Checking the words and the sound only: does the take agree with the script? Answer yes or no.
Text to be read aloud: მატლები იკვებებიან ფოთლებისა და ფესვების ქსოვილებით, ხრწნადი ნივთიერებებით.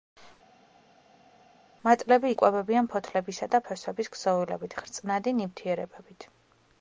yes